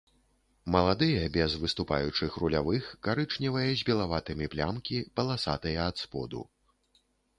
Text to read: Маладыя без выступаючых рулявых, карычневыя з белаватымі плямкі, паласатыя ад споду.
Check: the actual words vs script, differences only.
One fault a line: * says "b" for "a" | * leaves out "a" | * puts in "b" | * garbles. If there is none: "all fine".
all fine